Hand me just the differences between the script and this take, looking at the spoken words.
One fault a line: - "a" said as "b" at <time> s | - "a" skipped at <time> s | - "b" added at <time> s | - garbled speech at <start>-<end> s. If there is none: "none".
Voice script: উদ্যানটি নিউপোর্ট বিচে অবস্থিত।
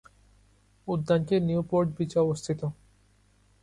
none